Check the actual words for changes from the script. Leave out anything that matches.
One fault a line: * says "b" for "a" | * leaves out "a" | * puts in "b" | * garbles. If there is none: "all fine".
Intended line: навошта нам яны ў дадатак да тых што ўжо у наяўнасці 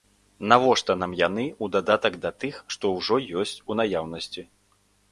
* puts in "ёсць"